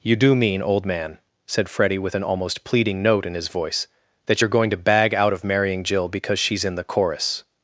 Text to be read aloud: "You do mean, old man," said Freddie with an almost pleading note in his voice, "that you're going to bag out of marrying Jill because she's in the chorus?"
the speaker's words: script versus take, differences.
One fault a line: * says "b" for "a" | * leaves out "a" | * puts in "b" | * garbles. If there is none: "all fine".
all fine